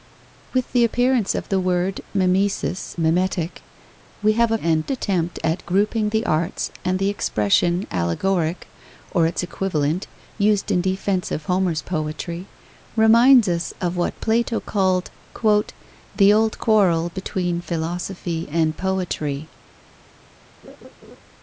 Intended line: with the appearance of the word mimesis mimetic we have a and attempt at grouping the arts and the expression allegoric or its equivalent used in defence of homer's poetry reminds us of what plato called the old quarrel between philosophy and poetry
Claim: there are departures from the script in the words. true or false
false